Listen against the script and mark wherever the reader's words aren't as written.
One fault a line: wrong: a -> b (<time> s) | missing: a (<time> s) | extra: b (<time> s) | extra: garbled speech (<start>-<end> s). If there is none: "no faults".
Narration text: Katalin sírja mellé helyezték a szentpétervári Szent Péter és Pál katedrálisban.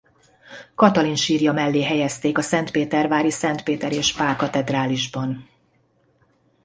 no faults